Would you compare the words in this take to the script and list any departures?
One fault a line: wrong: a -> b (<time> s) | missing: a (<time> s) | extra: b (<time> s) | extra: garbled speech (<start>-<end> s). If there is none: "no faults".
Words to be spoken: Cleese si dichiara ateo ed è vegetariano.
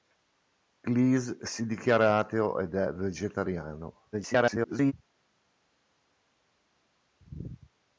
extra: garbled speech (4.1-4.9 s)